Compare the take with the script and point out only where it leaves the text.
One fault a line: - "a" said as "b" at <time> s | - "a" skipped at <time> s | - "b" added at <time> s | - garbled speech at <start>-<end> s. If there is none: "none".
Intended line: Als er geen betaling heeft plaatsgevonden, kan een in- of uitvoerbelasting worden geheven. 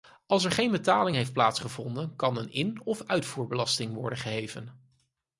none